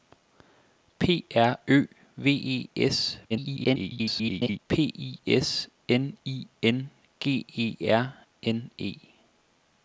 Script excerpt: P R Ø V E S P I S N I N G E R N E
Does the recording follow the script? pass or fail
fail